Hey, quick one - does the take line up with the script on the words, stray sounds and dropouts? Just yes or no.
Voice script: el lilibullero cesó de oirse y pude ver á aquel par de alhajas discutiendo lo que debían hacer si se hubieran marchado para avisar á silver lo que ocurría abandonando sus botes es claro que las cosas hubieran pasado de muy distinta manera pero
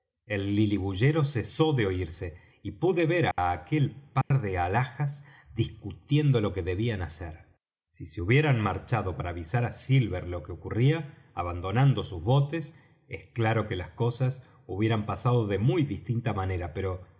no